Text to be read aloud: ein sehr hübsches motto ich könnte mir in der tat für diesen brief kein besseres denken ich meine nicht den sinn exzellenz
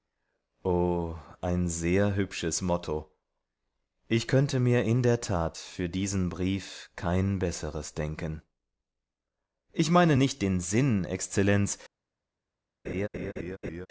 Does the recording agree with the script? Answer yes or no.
yes